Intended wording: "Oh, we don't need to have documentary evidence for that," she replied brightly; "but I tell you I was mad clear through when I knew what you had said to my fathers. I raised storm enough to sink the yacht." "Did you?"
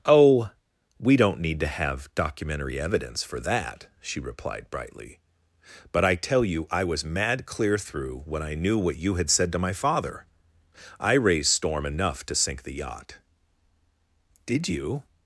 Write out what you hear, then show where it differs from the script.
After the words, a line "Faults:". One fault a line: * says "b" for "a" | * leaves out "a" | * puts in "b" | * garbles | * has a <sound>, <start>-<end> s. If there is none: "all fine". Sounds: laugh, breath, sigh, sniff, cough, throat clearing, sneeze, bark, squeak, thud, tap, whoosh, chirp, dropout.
"Oh, we don't need to have documentary evidence for that," she replied brightly; "but I tell you I was mad clear through when I knew what you had said to my father. I raised storm enough to sink the yacht." "Did you?"
Faults:
* says "father" for "fathers"